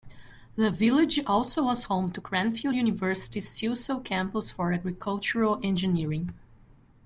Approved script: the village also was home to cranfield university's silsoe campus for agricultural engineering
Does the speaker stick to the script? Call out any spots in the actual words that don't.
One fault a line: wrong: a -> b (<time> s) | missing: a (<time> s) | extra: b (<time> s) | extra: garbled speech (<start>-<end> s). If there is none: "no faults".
no faults